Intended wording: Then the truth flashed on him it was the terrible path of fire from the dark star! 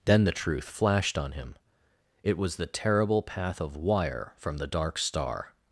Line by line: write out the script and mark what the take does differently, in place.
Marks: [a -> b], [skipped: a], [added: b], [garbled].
Then the truth flashed on him it was the terrible path of [fire -> wire] from the dark star!